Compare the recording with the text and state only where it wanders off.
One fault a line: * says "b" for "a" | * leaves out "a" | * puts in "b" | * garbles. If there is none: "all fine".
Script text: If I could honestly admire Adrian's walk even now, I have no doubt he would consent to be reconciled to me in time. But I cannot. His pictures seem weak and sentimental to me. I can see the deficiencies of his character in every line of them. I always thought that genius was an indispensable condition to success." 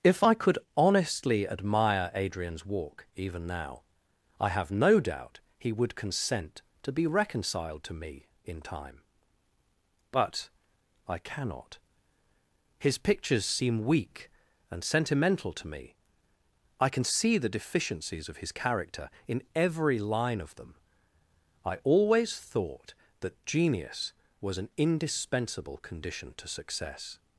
all fine